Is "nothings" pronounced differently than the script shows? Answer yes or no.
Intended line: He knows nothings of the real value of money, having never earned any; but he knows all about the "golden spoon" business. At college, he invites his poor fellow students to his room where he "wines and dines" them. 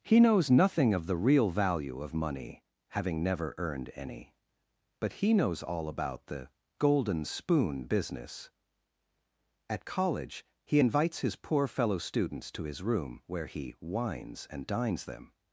yes